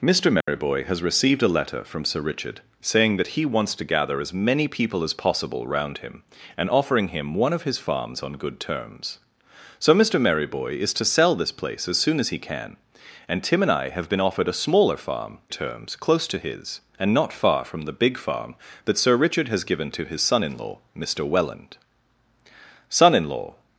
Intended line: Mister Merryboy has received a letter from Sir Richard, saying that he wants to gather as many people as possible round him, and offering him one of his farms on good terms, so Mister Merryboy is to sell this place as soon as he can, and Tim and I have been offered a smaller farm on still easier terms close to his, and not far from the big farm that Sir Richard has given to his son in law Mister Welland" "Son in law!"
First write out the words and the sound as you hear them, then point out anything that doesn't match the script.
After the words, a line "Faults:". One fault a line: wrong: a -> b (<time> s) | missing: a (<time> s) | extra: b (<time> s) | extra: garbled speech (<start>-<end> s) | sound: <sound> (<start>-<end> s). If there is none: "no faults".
Mister Merryboy has received a letter from Sir Richard, saying that he wants to gather as many people as possible round him, and offering him one of his farms on good terms, so Mister Merryboy is to sell this place as soon as he can, and Tim and I have been offered a smaller farm terms close to his, and not far from the big farm that Sir Richard has given to his son in law Mister Welland" "Son in law!"
Faults:
sound: dropout (0.4-0.5 s)
missing: on still easier (15.4 s)